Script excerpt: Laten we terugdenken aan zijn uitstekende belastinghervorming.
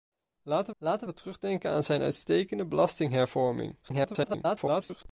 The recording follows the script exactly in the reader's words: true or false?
false